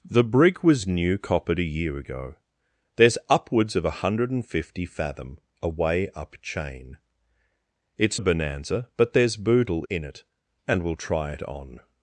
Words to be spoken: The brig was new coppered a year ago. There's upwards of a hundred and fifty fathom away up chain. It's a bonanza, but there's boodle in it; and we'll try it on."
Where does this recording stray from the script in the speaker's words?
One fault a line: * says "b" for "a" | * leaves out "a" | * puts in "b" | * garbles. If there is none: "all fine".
all fine